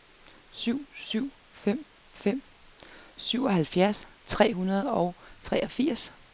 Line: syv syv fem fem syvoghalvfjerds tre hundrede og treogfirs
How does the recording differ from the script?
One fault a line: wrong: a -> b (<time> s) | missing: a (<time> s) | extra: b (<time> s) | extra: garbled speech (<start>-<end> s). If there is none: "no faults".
no faults